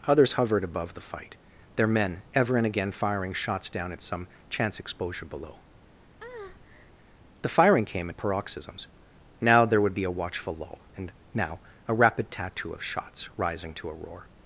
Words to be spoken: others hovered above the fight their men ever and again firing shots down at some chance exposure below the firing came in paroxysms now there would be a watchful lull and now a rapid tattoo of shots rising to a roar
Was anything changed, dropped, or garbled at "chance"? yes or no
no